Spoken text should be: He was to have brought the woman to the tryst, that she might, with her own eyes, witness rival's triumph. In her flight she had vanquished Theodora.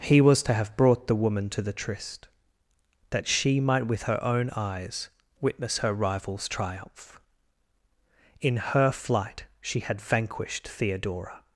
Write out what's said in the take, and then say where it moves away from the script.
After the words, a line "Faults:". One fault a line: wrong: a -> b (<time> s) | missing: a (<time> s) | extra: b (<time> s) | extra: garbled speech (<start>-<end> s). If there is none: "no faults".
He was to have brought the woman to the tryst, that she might, with her own eyes, witness her rival's triumph. In her flight she had vanquished Theodora.
Faults:
extra: her (5.8 s)